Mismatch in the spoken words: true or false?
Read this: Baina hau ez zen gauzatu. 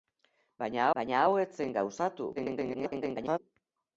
true